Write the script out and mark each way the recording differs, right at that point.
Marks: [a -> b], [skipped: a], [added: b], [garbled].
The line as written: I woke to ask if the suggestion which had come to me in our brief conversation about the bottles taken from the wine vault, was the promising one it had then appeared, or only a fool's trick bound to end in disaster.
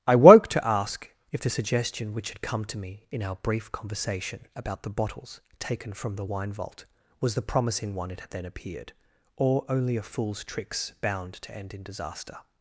I woke to ask if the suggestion which had come to me in our brief conversation about the bottles taken from the wine vault, was the promising one it had then appeared, or only a fool's [trick -> tricks] bound to end in disaster.